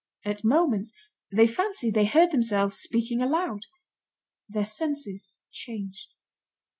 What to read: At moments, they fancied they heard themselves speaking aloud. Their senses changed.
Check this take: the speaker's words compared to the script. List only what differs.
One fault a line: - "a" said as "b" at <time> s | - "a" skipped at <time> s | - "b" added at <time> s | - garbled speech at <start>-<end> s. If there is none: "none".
none